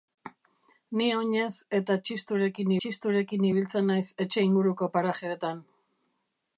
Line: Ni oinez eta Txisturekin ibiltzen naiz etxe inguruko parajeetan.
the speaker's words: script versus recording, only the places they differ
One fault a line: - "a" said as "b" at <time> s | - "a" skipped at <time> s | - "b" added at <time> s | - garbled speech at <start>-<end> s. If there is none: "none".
- "Txisturekin" added at 2.8 s